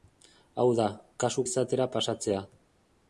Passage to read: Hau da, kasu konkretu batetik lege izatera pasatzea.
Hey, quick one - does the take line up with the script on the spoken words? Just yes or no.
no